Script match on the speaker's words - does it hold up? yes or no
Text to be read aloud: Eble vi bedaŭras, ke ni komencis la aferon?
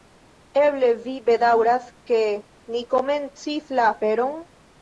yes